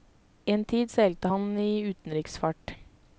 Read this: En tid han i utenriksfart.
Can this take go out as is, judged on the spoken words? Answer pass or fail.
fail